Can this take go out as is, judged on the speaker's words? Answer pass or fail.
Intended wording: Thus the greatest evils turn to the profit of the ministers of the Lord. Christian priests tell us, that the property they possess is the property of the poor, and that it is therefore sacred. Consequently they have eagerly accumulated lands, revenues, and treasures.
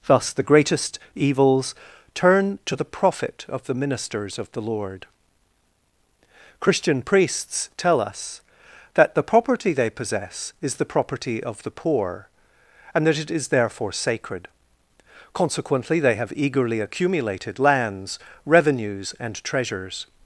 pass